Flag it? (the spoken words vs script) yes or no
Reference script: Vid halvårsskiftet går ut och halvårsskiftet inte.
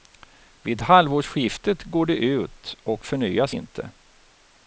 yes